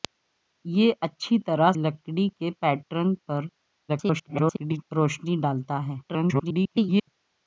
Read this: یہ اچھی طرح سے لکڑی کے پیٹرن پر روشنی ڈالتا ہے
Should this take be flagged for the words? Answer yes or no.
yes